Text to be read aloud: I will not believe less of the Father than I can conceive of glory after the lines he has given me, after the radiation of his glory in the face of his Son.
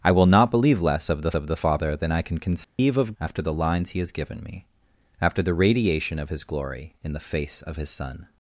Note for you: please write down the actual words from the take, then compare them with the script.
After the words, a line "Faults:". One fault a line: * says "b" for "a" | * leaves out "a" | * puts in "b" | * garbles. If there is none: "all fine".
I will not believe less of the of the Father than I can conceive of after the lines he has given me, after the radiation of his glory in the face of his Son.
Faults:
* puts in "of the"
* leaves out "glory"